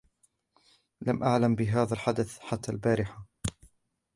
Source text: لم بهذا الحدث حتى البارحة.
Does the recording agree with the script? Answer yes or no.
no